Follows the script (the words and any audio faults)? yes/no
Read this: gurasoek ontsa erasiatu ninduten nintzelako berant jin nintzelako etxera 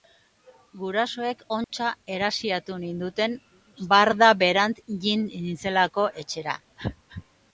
no